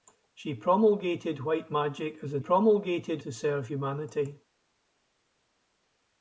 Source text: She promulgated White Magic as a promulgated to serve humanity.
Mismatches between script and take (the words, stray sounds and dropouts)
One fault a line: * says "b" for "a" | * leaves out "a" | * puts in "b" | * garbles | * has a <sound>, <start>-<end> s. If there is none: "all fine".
all fine